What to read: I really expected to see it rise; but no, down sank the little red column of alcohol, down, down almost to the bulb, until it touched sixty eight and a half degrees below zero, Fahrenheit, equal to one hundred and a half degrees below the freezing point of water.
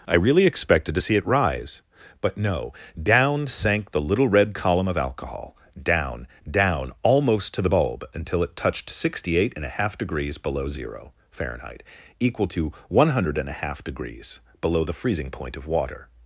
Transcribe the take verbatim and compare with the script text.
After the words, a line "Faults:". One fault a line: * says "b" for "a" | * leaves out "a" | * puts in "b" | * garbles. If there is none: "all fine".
I really expected to see it rise; but no, down sank the little red column of alcohol, down, down almost to the bulb, until it touched sixty eight and a half degrees below zero, Fahrenheit, equal to one hundred and a half degrees below the freezing point of water.
Faults:
all fine